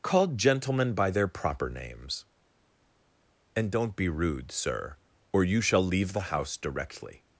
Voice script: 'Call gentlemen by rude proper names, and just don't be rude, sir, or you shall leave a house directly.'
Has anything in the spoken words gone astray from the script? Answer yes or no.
yes